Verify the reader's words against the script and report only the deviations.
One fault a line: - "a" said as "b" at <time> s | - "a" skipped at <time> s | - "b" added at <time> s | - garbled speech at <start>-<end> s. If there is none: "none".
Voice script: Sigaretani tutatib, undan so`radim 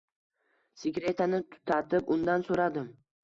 none